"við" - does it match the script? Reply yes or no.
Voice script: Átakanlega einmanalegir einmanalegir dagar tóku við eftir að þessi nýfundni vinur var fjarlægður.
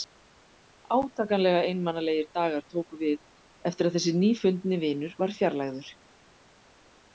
yes